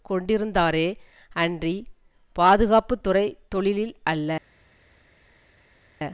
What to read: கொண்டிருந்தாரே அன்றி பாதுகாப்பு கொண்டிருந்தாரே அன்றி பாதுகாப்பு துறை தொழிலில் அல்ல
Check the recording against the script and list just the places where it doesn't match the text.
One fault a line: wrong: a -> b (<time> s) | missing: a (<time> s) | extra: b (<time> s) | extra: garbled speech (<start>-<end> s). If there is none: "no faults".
missing: கொண்டிருந்தாரே அன்றி பாதுகாப்பு (2.9 s)